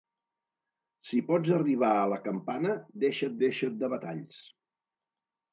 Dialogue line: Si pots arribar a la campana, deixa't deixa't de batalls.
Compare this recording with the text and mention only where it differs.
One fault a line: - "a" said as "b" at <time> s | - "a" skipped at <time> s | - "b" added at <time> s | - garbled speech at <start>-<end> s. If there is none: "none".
none